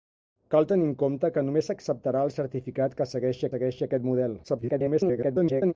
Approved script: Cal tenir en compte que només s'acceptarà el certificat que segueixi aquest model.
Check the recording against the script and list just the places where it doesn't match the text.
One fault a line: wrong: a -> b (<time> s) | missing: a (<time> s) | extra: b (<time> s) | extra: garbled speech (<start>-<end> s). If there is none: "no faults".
extra: segueixi (3.5 s)
extra: garbled speech (4.4-5.7 s)